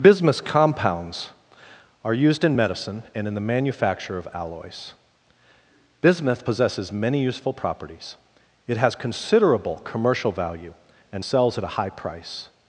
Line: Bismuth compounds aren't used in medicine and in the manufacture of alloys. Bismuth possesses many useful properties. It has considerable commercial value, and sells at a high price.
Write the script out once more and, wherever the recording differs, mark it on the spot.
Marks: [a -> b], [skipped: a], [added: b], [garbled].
Bismuth compounds [aren't -> are] used in medicine and in the manufacture of alloys. Bismuth possesses many useful properties. It has considerable commercial value, and sells at a high price.